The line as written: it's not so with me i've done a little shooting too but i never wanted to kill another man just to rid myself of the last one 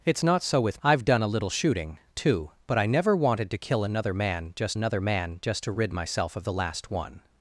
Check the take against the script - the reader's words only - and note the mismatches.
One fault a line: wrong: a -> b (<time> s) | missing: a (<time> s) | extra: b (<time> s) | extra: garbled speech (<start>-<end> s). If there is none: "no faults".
missing: me (0.8 s)
extra: another man just (4.7 s)